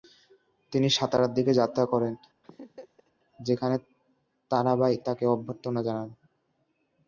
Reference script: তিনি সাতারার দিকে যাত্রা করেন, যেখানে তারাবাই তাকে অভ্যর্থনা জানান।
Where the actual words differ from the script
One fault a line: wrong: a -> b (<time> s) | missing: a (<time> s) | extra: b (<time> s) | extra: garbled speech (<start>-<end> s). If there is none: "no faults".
no faults